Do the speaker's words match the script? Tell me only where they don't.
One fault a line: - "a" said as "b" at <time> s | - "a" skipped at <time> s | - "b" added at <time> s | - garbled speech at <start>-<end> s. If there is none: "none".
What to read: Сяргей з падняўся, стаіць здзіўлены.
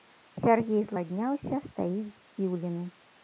none